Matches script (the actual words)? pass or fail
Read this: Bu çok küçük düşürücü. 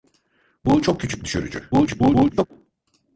fail